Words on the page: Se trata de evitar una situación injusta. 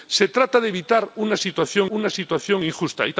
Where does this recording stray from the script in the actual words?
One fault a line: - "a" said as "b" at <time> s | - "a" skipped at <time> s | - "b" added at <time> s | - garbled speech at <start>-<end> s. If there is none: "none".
- "una situación" added at 1.9 s